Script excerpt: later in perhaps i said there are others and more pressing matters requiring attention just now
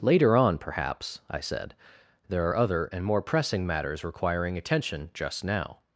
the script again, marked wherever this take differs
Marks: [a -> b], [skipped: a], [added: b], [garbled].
later [in -> on] perhaps i said there are [others -> other] and more pressing matters requiring attention just now